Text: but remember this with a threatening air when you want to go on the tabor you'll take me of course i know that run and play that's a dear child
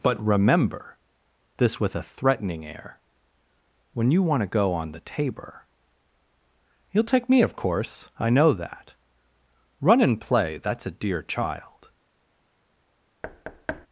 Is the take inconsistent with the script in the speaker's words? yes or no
no